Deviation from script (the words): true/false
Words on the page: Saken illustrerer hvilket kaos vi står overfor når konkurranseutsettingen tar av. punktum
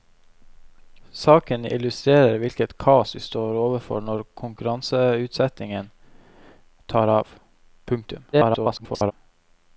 true